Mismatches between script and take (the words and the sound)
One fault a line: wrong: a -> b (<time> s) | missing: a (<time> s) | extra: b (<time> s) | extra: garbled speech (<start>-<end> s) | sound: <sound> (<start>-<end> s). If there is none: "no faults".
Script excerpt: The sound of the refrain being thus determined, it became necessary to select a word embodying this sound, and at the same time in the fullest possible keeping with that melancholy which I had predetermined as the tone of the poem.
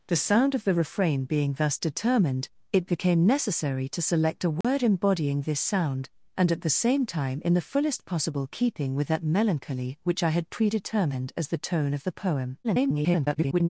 sound: dropout (4.6-4.6 s)
extra: garbled speech (12.6-13.7 s)